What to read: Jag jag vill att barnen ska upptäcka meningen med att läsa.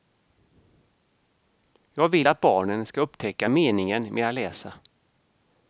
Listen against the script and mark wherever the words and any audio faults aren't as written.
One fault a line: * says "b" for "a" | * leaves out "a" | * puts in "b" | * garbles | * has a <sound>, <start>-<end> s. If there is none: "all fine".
* leaves out "jag"